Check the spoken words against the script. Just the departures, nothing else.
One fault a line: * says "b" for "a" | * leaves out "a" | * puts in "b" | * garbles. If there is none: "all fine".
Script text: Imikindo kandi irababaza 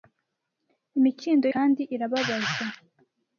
all fine